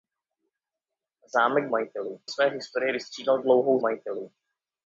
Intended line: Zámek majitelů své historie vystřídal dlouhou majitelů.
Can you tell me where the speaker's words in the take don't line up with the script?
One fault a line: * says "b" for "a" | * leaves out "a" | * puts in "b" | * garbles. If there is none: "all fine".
all fine